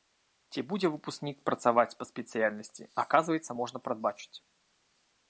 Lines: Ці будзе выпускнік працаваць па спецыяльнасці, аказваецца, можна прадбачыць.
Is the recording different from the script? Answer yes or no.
no